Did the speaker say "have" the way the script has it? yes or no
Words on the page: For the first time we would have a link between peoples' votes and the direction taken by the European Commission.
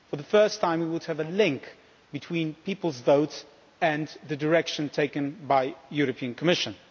yes